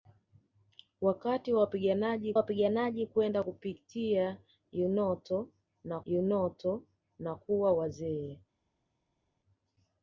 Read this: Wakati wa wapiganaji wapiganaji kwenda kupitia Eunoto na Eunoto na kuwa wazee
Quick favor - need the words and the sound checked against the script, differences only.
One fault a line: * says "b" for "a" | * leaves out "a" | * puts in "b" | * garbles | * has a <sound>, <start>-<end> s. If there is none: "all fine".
all fine